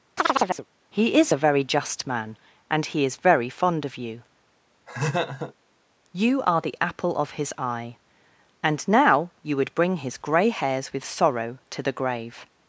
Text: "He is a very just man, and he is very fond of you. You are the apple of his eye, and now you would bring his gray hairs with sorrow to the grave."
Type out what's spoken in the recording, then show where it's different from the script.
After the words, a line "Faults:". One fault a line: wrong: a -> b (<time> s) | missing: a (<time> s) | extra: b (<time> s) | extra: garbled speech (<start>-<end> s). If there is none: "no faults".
"He is a very just man, and he is very fond of you. You are the apple of his eye, and now you would bring his gray hairs with sorrow to the grave."
Faults:
no faults